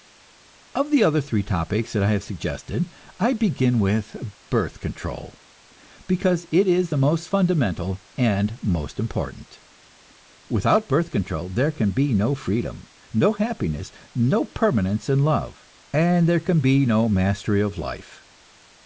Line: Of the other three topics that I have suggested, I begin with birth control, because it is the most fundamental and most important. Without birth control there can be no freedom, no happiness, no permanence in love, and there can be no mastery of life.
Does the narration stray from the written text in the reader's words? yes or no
no